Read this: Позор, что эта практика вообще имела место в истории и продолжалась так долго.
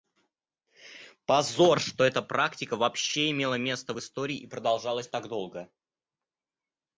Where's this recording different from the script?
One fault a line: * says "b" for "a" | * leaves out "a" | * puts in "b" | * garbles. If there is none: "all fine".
all fine